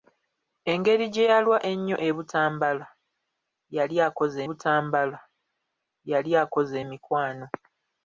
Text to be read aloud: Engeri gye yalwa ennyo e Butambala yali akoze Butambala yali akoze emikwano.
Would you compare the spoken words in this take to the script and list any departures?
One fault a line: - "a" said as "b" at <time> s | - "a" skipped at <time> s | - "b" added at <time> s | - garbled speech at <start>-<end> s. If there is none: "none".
none